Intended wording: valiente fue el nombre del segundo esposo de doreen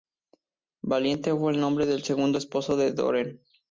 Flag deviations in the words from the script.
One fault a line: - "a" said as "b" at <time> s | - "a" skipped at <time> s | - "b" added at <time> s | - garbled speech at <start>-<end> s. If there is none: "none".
none